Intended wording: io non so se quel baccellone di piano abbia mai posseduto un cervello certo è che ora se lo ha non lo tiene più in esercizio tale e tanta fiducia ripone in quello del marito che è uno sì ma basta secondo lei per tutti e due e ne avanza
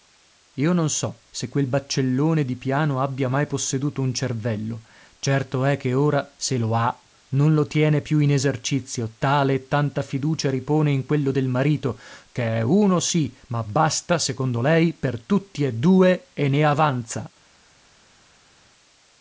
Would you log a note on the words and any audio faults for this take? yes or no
no